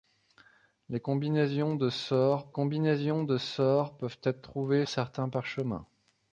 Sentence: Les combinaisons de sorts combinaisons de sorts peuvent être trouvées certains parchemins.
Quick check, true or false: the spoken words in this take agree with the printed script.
true